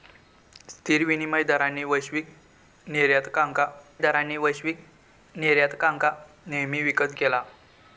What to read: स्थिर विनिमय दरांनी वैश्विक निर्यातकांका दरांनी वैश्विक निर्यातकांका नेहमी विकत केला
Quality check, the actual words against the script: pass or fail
pass